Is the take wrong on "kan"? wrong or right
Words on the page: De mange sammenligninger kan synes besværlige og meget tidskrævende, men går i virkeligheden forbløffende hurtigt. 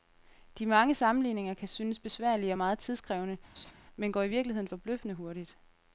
right